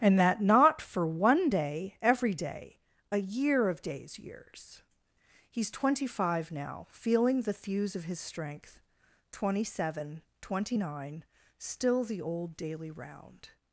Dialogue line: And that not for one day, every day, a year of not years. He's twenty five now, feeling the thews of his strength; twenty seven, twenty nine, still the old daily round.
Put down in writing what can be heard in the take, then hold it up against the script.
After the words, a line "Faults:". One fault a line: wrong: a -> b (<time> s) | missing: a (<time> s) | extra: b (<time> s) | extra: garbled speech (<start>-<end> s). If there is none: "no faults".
And that not for one day, every day, a year of days years. He's twenty five now, feeling the thews of his strength; twenty seven, twenty nine, still the old daily round.
Faults:
wrong: not -> days (3.8 s)